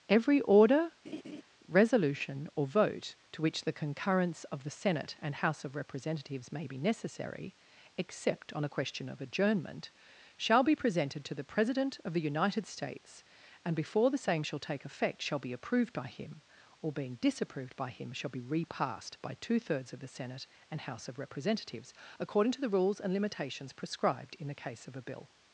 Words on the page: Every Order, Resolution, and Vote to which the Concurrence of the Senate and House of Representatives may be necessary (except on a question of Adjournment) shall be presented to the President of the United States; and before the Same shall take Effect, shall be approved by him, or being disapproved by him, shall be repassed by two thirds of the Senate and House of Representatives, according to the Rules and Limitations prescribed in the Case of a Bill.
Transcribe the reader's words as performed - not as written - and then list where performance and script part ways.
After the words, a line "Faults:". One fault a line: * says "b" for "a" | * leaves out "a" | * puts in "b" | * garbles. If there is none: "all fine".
Every Order, Resolution, or Vote to which the Concurrence of the Senate and House of Representatives may be necessary (except on a question of Adjournment) shall be presented to the President of the United States; and before the Same shall take Effect, shall be approved by him, or being disapproved by him, shall be repassed by two thirds of the Senate and House of Representatives, according to the Rules and Limitations prescribed in the Case of a Bill.
Faults:
* says "or" for "and"